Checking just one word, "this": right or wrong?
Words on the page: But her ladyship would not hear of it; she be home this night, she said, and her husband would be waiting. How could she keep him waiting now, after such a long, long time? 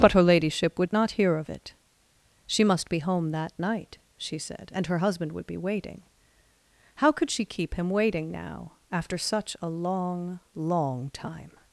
wrong